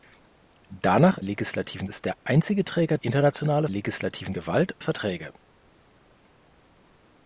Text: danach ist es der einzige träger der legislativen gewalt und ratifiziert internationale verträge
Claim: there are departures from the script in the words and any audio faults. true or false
true